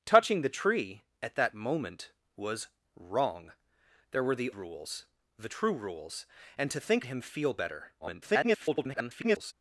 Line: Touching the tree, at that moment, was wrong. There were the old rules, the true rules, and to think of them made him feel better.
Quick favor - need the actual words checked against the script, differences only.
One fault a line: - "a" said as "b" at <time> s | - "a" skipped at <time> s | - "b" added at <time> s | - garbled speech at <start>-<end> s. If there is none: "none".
- "old" skipped at 4.5 s
- "of them made" skipped at 7.0 s
- garbled speech at 8.0-9.5 s